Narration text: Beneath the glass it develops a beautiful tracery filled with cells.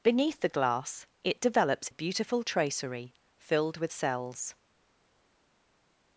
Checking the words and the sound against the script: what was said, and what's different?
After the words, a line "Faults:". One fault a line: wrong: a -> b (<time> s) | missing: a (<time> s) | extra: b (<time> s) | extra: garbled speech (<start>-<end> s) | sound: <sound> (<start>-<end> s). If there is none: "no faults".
Beneath the glass it develops a beautiful tracery filled with cells.
Faults:
no faults